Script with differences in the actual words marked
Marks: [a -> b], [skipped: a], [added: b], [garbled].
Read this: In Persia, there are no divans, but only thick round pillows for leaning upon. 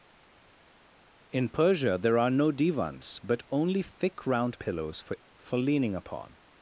In Persia, there are no divans, but only thick round pillows for [added: for] leaning upon.